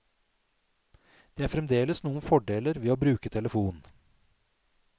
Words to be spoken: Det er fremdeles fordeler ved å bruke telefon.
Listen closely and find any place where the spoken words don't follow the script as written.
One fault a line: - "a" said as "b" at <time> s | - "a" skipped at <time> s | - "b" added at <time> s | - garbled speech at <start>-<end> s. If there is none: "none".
- "noen" added at 2.0 s